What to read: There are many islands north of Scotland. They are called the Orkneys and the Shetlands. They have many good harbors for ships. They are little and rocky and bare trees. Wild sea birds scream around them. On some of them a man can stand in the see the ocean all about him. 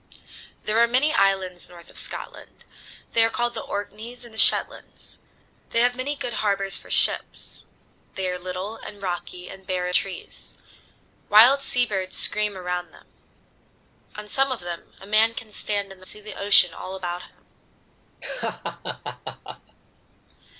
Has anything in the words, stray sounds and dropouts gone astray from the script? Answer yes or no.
yes